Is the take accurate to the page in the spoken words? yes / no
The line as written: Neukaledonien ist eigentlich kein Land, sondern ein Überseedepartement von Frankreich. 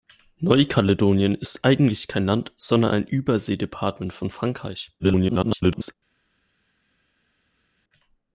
no